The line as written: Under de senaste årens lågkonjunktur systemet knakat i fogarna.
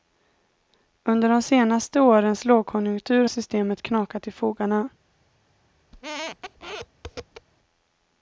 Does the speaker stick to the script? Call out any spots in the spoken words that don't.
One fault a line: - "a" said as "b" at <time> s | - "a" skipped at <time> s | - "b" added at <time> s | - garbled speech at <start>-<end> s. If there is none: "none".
none